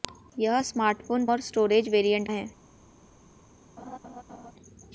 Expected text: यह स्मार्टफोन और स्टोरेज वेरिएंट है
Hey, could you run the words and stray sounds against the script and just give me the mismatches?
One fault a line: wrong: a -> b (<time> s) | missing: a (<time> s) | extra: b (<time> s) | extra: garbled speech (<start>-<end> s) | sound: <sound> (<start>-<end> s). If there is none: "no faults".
sound: laugh (3.8-4.5 s)